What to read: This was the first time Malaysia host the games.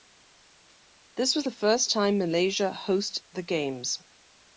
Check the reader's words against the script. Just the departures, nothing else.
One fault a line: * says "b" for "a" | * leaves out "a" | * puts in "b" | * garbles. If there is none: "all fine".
all fine